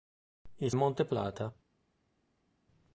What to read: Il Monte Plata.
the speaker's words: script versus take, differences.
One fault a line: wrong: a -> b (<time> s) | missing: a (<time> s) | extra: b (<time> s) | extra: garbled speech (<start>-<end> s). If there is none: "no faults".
no faults